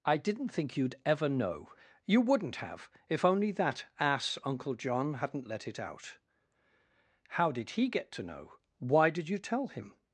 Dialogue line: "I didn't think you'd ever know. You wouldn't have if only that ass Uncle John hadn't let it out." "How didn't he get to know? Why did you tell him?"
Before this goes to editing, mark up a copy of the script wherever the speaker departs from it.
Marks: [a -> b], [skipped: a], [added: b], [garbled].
"I didn't think you'd ever know. You wouldn't have if only that ass Uncle John hadn't let it out." "How [didn't -> did] he get to know? Why did you tell him?"